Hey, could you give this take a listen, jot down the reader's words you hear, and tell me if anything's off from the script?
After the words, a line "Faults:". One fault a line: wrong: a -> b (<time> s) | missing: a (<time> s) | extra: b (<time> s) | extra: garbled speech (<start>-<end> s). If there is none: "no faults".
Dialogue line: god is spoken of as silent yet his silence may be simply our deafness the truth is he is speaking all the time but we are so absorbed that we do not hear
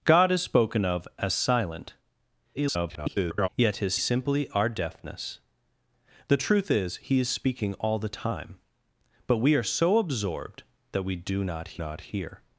god is spoken of as silent [garbled] yet his simply our deafness the truth is he is speaking all the time but we are so absorbed that we do not not hear
Faults:
extra: garbled speech (2.5-3.5 s)
missing: silence may be (4.0 s)
extra: not (11.8 s)